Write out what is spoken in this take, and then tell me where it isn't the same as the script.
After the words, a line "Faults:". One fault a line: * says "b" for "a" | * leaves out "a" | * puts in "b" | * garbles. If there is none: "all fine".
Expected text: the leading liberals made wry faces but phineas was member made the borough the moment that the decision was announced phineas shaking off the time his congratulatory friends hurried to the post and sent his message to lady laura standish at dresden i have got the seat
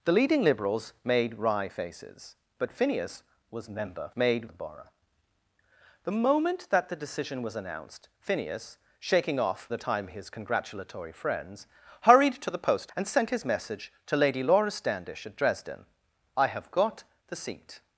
the leading liberals made wry faces but phineas was member made the borough the moment that the decision was announced phineas shaking off the time his congratulatory friends hurried to the post and sent his message to lady laura standish at dresden i have got the seat
Faults:
all fine